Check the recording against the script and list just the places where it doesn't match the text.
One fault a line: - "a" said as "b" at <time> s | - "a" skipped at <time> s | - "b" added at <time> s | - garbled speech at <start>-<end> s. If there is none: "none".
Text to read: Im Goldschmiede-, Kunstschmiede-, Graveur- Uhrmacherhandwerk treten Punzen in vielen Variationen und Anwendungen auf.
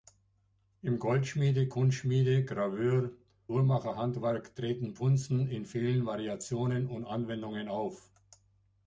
none